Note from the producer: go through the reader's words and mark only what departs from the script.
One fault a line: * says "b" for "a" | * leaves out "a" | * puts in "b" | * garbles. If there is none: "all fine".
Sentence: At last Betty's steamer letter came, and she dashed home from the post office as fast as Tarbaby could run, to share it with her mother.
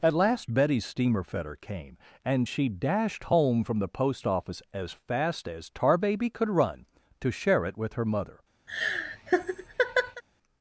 * says "fetter" for "letter"